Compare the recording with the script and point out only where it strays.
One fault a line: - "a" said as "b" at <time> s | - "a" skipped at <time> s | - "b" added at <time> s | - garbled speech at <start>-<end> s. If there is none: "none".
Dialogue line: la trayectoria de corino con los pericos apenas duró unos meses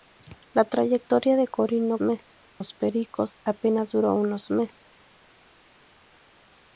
- "con" said as "meses" at 2.0 s